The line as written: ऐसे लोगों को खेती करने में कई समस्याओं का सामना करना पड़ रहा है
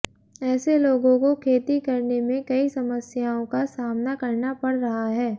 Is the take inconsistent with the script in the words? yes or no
no